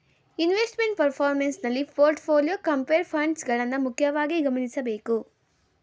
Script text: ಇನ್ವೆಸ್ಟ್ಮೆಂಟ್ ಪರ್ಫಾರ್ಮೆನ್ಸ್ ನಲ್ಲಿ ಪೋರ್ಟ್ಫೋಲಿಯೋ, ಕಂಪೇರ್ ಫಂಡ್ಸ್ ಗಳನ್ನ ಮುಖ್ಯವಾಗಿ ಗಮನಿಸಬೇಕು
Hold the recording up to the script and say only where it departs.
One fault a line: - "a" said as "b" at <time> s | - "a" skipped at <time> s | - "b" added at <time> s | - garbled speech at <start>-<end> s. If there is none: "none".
none